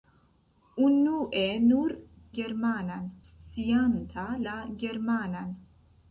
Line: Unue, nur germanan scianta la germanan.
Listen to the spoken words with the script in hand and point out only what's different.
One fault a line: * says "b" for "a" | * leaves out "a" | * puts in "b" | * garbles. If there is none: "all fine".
all fine